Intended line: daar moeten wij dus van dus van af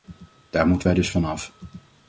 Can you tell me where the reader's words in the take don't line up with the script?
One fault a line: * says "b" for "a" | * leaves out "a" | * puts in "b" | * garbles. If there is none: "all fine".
* leaves out "dus van"